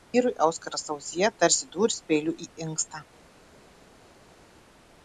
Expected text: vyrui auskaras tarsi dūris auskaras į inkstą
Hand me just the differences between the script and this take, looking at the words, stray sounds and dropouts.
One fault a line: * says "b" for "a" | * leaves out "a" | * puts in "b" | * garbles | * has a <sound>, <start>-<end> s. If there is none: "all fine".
* puts in "ausyje"
* says "peiliu" for "auskaras"